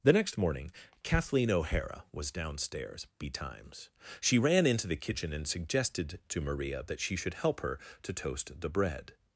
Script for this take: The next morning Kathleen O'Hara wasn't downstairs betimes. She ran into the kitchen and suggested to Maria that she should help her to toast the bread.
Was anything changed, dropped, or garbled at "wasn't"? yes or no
yes